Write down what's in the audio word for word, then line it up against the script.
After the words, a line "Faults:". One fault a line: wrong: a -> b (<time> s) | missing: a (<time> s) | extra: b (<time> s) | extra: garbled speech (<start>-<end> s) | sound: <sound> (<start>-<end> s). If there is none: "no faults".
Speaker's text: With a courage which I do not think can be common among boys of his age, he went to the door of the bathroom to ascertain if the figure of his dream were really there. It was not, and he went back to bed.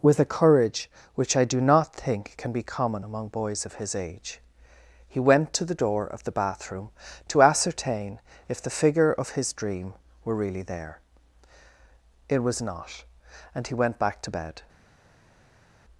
With a courage which I do not think can be common among boys of his age, he went to the door of the bathroom to ascertain if the figure of his dream were really there. It was not, and he went back to bed.
Faults:
no faults